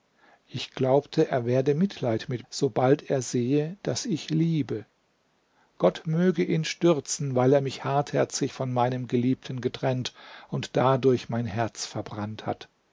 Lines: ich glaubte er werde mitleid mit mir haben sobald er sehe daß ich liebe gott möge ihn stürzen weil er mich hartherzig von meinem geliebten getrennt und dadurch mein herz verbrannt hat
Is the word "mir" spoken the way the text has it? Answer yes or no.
no